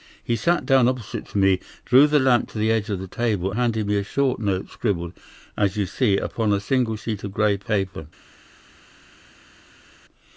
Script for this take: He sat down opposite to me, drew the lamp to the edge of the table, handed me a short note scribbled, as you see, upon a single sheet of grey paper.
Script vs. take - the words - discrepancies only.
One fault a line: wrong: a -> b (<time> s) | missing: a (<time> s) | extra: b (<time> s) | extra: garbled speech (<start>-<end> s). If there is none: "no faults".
no faults